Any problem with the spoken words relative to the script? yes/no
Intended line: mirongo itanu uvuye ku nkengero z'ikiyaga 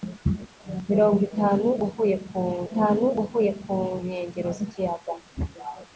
yes